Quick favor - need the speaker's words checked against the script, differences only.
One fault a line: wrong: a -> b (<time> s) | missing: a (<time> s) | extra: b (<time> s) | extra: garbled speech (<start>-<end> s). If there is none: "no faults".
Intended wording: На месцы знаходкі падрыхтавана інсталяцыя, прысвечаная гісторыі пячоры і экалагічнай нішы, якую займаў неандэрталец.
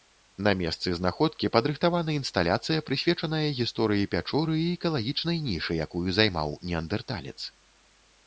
no faults